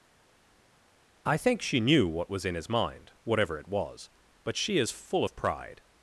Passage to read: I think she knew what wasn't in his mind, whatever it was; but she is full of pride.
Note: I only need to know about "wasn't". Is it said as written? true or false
false